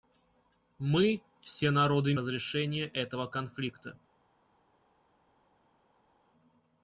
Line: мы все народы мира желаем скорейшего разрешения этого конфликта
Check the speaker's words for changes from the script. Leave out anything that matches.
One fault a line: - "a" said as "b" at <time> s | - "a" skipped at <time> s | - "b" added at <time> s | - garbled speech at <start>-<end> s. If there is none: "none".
- "мира желаем скорейшего" skipped at 2.1 s